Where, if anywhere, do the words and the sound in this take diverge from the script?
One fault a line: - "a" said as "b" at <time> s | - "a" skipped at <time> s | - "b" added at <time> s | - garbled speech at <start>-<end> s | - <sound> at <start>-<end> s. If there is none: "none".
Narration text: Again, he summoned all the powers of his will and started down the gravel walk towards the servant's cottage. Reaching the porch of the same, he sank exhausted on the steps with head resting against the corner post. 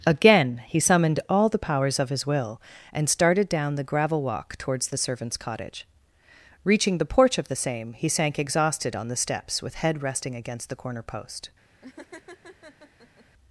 - laugh at 11.8-13.3 s